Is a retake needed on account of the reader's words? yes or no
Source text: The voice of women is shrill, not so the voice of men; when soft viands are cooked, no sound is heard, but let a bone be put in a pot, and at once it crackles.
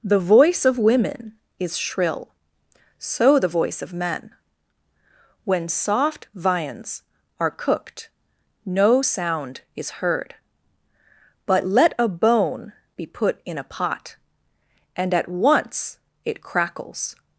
yes